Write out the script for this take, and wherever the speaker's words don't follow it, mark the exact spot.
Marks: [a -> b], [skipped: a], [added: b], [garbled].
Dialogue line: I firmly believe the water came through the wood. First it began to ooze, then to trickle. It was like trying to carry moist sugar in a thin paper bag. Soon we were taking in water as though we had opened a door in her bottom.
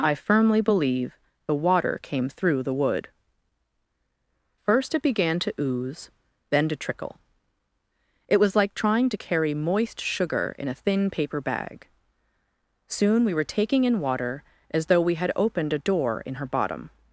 I firmly believe the water came through the wood. First it began to ooze, then to trickle. It was like trying to carry moist sugar in a thin paper bag. Soon we were taking in water as though we had opened a door in her bottom.